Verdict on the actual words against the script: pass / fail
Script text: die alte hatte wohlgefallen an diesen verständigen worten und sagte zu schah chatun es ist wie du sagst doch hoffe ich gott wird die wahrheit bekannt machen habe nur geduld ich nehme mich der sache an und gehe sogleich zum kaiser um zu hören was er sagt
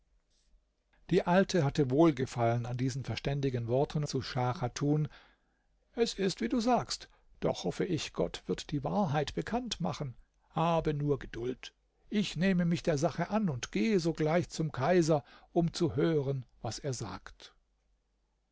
fail